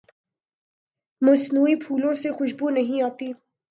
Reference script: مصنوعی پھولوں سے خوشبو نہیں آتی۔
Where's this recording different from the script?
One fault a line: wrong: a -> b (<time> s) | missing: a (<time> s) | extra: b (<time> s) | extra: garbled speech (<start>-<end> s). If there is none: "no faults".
no faults